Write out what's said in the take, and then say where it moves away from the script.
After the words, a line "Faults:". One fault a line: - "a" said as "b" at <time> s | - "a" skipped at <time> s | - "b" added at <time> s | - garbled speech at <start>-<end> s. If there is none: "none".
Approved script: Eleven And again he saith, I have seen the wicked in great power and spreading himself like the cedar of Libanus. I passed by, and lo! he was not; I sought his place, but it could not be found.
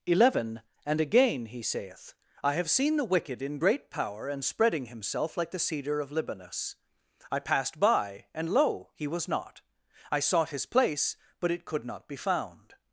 Eleven And again he saith, I have seen the wicked in great power and spreading himself like the cedar of Libanus. I passed by, and lo! he was not; I sought his place, but it could not be found.
Faults:
none